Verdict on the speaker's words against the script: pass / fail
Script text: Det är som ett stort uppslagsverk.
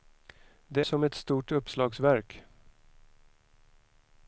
fail